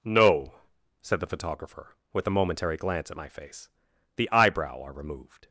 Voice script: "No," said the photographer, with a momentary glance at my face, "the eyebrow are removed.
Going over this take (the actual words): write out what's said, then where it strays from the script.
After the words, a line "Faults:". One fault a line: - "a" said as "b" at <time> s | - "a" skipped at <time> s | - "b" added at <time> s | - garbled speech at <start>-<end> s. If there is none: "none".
"No," said the photographer, with a momentary glance at my face, "the eyebrow are removed.
Faults:
none